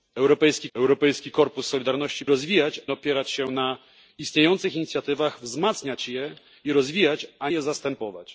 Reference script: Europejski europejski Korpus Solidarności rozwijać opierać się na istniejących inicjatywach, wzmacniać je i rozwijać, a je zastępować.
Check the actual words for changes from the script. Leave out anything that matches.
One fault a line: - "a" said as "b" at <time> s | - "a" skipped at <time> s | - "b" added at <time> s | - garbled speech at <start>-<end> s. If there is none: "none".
none